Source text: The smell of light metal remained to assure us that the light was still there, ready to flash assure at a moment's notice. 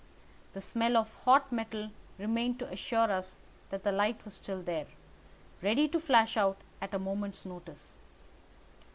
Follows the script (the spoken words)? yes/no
no